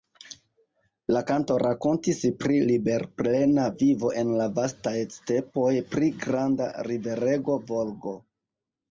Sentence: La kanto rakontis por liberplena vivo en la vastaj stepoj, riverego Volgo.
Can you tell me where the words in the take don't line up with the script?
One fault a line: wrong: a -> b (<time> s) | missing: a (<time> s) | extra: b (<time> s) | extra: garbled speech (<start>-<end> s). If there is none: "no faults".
wrong: por -> pri (2.4 s)
extra: pri granda (6.0 s)